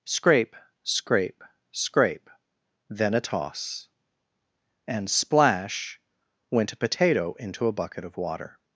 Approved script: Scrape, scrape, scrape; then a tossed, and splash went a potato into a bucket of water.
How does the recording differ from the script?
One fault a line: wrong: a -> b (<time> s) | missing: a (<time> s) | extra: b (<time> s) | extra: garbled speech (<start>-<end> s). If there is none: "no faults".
wrong: tossed -> toss (3.2 s)